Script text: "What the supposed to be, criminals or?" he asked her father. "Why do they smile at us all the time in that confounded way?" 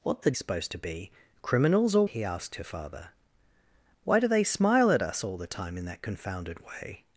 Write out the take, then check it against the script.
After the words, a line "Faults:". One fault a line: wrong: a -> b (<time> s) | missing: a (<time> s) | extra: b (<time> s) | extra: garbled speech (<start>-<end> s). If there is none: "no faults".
"What the supposed to be, criminals or?" he asked her father. "Why do they smile at us all the time in that confounded way?"
Faults:
no faults